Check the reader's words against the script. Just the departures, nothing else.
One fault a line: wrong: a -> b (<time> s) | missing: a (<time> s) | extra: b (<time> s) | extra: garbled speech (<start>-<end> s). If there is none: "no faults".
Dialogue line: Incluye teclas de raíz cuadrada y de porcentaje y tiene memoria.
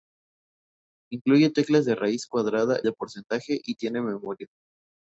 missing: y (2.8 s)